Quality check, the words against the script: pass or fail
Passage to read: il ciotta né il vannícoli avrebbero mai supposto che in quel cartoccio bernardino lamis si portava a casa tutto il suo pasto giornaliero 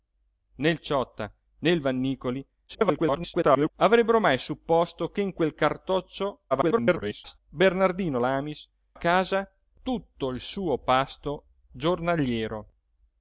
fail